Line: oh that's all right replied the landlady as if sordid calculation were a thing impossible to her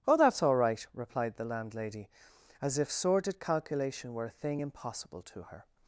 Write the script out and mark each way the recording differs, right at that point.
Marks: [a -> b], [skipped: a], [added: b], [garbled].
oh that's all right replied the landlady as if sordid calculation were a thing impossible to her